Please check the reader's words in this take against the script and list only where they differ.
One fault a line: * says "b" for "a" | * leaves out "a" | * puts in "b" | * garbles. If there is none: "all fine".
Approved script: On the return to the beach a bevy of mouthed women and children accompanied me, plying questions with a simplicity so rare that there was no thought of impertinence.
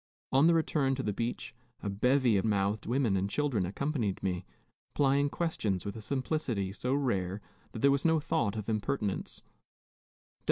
all fine